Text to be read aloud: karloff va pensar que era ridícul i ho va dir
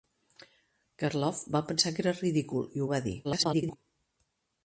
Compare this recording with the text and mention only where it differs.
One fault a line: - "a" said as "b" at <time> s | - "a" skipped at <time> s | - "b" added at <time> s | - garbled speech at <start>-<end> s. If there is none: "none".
- garbled speech at 3.2-3.8 s